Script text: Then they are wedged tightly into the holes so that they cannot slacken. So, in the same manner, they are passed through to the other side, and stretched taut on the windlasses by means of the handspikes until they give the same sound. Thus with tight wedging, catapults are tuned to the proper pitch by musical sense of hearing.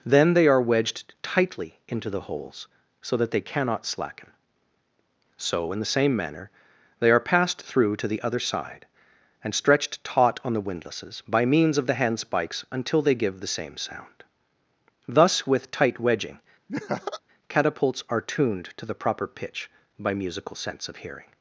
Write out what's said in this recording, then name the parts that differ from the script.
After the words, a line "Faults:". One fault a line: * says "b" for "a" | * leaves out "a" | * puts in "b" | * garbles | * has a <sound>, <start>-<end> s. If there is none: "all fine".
Then they are wedged tightly into the holes so that they cannot slacken. So, in the same manner, they are passed through to the other side, and stretched taut on the windlasses by means of the handspikes until they give the same sound. Thus with tight wedging, catapults are tuned to the proper pitch by musical sense of hearing.
Faults:
* has a laugh, 16.7-17.2 s